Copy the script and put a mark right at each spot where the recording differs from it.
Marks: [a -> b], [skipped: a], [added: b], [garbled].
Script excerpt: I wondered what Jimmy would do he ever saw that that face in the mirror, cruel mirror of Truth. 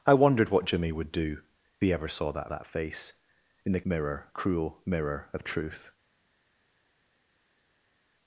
I wondered what Jimmy would do he ever saw that that face in the mirror, cruel mirror of Truth.